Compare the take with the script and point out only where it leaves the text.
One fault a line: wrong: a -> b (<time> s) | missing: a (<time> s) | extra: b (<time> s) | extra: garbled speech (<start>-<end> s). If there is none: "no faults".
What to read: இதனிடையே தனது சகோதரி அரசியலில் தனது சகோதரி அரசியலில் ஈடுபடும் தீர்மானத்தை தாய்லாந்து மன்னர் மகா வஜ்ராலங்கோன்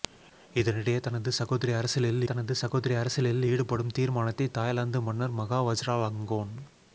no faults